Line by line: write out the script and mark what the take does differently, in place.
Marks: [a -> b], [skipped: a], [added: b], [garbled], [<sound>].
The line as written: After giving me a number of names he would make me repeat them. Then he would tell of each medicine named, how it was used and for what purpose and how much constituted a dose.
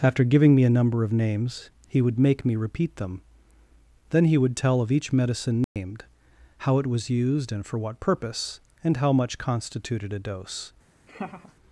After giving me a number of names he would make me repeat them. Then he would tell of each medicine named, [dropout] how it was used and for what purpose and how much constituted a dose. [laugh]